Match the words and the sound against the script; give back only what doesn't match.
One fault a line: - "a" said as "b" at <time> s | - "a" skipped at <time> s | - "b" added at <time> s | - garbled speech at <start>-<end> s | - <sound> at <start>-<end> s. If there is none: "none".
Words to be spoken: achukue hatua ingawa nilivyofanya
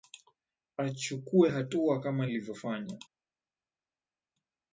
- "ingawa" said as "kama" at 2.0 s